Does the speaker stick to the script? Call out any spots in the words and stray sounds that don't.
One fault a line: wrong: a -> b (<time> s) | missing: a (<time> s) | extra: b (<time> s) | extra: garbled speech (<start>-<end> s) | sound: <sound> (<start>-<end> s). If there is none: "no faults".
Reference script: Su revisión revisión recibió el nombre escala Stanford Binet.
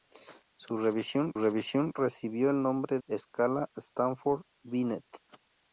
no faults